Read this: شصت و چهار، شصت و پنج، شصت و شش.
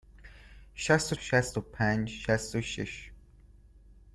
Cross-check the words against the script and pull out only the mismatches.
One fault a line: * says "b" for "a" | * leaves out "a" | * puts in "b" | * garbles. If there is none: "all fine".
* leaves out "چهار"